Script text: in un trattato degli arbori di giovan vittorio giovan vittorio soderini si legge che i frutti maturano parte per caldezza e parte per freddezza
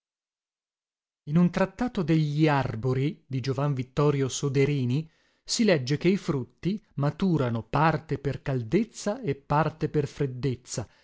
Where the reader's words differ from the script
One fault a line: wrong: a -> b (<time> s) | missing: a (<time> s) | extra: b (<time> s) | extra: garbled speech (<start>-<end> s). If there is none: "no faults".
missing: giovan vittorio (4.3 s)